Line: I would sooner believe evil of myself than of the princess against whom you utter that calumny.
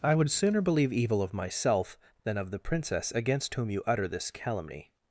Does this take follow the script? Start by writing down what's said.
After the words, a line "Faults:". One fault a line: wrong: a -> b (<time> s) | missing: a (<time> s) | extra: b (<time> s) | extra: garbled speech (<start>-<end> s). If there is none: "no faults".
I would sooner believe evil of myself than of the princess against whom you utter this calumny.
Faults:
wrong: that -> this (4.1 s)